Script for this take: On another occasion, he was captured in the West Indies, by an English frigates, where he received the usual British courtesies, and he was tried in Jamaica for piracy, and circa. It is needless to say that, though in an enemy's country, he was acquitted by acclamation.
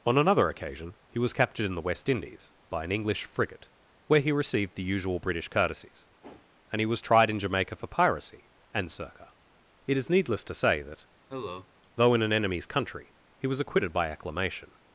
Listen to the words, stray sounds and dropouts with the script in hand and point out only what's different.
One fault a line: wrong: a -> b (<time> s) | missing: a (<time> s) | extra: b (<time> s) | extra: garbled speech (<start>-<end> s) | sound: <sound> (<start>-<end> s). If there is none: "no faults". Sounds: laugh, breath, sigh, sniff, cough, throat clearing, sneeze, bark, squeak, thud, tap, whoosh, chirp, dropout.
wrong: frigates -> frigate (3.2 s)
sound: whoosh (6.2-6.5 s)
sound: cough (11.3-11.7 s)